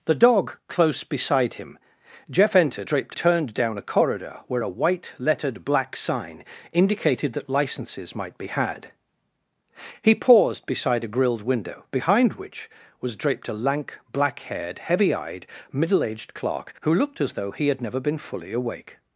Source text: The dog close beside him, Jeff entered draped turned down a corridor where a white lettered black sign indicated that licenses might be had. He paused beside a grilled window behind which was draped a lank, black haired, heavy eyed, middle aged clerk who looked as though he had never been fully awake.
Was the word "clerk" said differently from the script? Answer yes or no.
no